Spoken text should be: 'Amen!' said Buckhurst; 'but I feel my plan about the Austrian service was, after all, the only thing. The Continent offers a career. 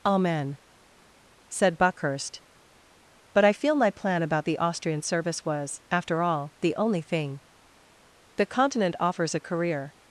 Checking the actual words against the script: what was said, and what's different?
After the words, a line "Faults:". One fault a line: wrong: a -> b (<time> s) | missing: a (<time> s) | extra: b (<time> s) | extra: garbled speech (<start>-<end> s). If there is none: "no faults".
'Amen!' said Buckhurst; 'but I feel my plan about the Austrian service was, after all, the only thing. The Continent offers a career.
Faults:
no faults